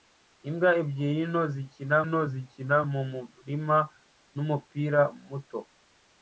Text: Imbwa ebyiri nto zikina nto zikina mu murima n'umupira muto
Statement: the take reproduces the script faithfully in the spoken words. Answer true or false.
true